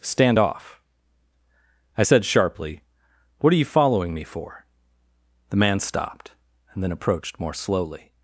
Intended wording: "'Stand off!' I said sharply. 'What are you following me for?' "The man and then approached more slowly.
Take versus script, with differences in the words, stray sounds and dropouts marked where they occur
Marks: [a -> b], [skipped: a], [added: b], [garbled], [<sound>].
"'Stand off!' I said sharply. 'What are you following me for?' "The man [added: stopped] and then approached more slowly.